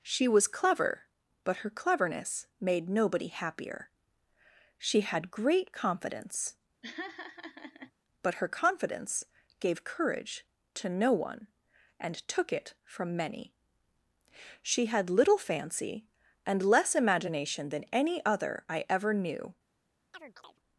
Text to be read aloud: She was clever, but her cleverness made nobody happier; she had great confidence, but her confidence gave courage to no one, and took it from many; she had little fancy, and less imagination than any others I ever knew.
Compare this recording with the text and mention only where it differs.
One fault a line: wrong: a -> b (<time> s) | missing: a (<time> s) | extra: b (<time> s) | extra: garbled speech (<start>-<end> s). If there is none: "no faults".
wrong: others -> other (18.3 s)